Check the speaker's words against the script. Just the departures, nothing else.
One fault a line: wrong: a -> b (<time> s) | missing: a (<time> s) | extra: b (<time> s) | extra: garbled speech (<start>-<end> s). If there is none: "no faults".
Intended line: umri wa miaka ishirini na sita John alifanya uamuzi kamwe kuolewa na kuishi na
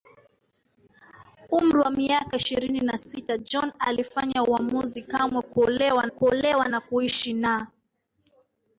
extra: kuolewa (6.1 s)